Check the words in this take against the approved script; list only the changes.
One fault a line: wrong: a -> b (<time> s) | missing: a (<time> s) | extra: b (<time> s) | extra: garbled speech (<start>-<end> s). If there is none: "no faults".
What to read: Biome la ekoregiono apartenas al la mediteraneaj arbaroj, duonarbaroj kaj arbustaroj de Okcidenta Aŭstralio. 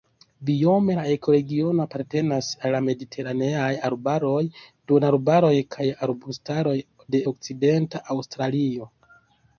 no faults